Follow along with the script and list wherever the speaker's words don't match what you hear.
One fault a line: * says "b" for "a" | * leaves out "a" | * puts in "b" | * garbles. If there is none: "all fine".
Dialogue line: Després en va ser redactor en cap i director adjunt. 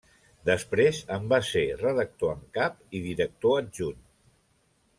all fine